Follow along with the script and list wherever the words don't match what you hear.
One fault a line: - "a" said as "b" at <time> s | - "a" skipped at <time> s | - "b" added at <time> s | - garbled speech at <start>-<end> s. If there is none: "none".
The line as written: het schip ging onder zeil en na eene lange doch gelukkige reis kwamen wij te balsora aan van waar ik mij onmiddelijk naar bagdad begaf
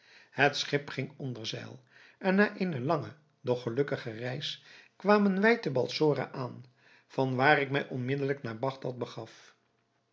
none